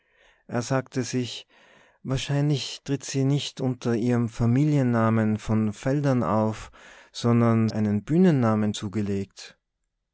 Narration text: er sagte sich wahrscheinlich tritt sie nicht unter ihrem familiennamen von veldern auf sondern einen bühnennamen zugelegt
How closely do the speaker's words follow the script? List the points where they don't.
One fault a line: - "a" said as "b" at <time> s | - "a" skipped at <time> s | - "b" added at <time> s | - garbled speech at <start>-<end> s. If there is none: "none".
none